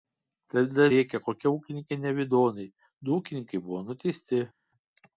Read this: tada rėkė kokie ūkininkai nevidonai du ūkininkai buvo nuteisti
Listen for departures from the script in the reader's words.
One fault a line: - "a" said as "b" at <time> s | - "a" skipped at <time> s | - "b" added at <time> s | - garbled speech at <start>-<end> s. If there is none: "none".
none